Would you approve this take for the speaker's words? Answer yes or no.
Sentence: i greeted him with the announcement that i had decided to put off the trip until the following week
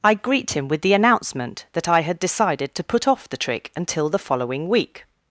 no